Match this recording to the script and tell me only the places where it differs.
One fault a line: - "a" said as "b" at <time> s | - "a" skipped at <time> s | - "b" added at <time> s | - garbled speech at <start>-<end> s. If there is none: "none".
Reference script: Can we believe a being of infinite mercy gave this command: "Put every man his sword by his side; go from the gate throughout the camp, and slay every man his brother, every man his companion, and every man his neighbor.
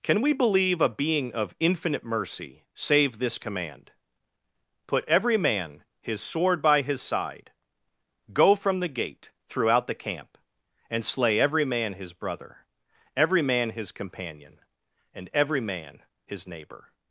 - "gave" said as "save" at 2.7 s